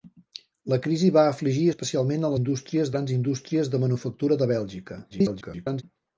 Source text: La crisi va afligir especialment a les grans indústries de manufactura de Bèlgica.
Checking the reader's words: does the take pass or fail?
fail